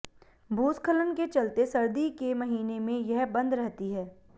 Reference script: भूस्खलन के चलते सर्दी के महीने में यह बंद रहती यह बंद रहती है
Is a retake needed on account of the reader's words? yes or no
yes